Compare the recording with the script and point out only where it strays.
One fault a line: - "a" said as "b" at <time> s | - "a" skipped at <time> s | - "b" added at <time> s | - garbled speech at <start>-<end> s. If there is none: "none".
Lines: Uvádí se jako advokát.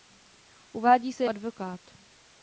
- "jako" skipped at 1.2 s